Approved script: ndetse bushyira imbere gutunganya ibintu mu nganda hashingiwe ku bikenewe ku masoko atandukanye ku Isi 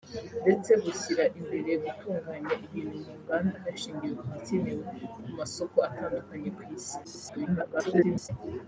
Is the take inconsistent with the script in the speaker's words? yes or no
yes